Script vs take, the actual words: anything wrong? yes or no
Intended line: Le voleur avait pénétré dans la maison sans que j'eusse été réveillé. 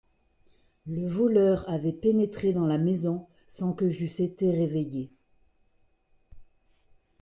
no